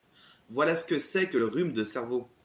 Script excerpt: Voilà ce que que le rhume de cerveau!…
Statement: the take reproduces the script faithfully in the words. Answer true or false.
false